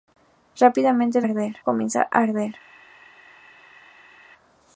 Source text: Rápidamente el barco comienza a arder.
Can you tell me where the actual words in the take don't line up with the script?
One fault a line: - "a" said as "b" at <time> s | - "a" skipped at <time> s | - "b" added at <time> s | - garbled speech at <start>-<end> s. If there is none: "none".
- "barco" said as "arder" at 1.2 s